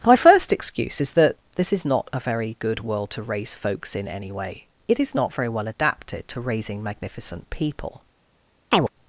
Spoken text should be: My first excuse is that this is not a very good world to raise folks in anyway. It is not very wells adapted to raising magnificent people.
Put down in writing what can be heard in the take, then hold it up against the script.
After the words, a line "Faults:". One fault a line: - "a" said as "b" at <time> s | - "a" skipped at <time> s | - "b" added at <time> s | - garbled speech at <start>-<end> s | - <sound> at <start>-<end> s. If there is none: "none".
My first excuse is that this is not a very good world to raise folks in anyway. It is not very well adapted to raising magnificent people.
Faults:
- "wells" said as "well" at 5.5 s
- chirp at 8.7-8.9 s